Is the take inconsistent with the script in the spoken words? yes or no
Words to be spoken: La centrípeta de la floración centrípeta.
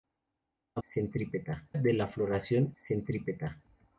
no